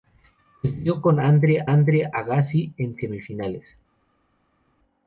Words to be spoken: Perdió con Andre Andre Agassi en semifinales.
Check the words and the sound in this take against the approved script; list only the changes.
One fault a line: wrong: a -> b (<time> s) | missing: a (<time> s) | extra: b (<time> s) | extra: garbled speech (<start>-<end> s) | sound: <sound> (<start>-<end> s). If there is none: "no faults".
no faults